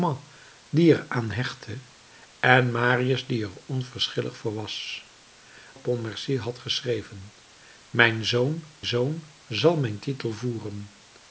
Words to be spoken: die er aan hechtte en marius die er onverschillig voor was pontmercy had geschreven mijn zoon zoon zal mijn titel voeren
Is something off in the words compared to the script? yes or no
no